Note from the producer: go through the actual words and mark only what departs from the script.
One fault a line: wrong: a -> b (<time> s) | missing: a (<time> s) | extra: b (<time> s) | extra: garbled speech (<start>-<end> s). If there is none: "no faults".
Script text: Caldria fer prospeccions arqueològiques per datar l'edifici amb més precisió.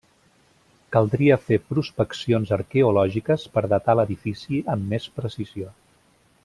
no faults